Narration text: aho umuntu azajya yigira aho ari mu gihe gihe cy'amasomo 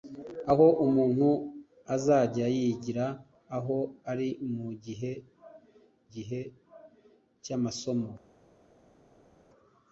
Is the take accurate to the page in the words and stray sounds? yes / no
yes